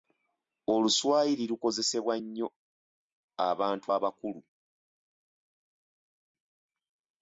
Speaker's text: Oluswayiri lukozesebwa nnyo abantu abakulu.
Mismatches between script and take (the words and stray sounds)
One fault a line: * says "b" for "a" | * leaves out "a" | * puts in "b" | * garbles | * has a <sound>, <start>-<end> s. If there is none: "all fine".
all fine